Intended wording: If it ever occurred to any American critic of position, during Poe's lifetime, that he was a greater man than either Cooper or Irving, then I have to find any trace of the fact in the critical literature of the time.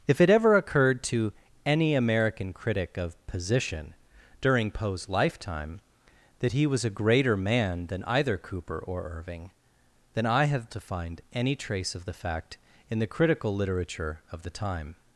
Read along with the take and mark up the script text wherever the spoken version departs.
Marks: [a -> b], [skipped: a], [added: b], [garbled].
If it ever occurred to any American critic of position, during Poe's lifetime, that he was a greater man than either Cooper or Irving, then I have to find any trace of the fact in the critical literature of the time.